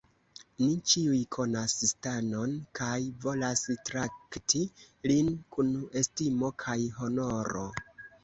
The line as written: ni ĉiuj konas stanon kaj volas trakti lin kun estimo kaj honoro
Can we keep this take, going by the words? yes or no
yes